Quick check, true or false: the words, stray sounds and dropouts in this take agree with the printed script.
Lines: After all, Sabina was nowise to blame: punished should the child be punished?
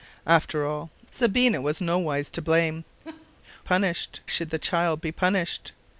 false